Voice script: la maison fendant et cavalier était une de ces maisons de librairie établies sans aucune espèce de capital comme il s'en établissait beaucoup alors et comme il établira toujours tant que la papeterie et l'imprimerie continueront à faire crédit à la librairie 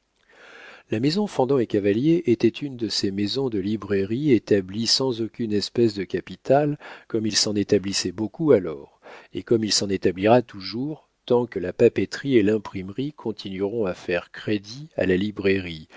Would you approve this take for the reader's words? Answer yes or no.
no